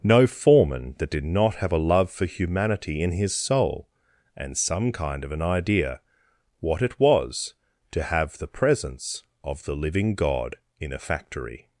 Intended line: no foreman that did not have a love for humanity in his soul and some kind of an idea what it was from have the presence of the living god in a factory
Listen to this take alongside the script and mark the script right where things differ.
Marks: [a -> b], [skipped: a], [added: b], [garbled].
no foreman that did not have a love for humanity in his soul and some kind of an idea what it was [from -> to] have the presence of the living god in a factory